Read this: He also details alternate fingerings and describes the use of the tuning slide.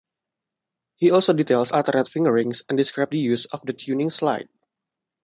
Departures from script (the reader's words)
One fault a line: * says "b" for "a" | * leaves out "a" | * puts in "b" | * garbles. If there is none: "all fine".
all fine